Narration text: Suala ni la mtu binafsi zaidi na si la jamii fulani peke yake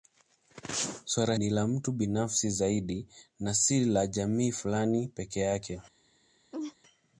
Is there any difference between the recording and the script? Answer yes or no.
no